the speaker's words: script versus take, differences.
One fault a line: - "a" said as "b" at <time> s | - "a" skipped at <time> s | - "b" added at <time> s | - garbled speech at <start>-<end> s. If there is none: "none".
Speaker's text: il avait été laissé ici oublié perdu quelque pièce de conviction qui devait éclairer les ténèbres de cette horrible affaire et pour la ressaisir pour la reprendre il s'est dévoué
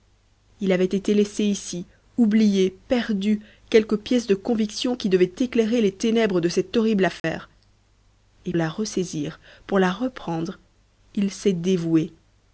- "pour" skipped at 8.5 s